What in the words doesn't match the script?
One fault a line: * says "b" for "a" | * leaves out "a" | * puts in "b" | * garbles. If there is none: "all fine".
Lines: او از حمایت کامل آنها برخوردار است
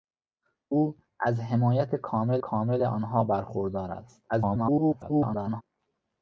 * puts in "کامل"
* garbles